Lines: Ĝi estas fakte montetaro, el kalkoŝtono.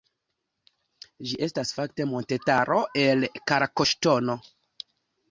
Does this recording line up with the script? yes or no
yes